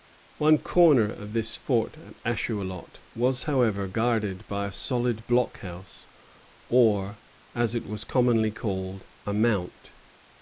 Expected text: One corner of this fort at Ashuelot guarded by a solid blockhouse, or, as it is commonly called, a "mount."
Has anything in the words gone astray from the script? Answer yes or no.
yes